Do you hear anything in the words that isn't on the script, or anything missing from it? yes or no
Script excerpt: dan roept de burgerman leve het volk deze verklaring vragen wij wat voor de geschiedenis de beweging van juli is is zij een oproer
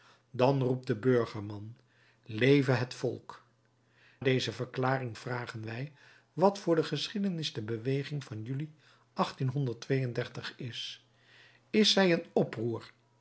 no